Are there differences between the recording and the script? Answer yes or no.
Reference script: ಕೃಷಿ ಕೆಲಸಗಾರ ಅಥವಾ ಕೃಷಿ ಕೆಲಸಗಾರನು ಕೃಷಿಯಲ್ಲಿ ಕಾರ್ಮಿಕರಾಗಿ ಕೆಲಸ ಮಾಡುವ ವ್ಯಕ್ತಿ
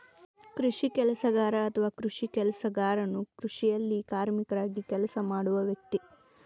no